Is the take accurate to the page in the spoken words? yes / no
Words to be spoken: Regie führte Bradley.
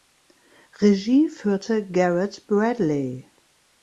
no